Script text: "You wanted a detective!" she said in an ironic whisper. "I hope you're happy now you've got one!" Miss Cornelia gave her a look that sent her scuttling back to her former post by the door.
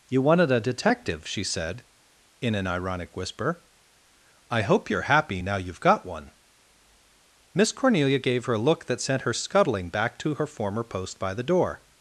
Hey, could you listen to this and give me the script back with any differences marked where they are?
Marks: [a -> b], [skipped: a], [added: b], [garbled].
"You wanted a detective!" she said in an ironic whisper. "I hope you're happy now you've got one!" Miss Cornelia gave her a look that sent her scuttling back to her former post by the door.